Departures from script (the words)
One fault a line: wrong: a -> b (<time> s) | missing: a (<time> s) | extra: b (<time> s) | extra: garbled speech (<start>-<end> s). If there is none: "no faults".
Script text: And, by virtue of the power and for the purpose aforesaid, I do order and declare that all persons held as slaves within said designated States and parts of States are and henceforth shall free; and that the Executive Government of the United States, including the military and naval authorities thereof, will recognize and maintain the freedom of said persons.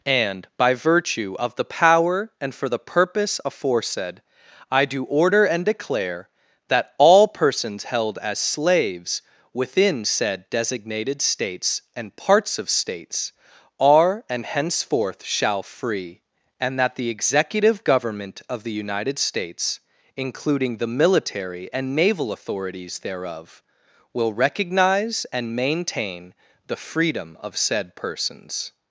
no faults